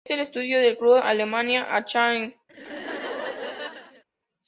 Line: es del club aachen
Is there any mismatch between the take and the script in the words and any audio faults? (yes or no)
yes